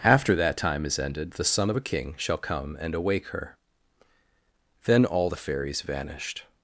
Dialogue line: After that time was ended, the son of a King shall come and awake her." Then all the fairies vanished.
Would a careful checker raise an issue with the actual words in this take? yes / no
yes